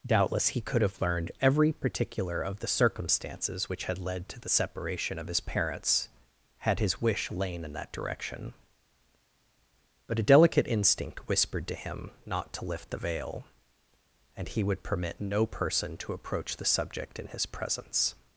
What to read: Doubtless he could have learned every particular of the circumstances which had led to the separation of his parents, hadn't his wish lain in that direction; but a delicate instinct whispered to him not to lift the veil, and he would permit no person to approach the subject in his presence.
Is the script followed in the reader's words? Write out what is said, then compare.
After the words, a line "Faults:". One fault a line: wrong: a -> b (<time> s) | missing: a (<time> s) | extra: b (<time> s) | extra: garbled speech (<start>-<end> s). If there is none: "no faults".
Doubtless he could have learned every particular of the circumstances which had led to the separation of his parents, had his wish lain in that direction; but a delicate instinct whispered to him not to lift the veil, and he would permit no person to approach the subject in his presence.
Faults:
wrong: hadn't -> had (6.6 s)